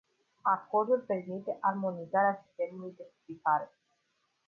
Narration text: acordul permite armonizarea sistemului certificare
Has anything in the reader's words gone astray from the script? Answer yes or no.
no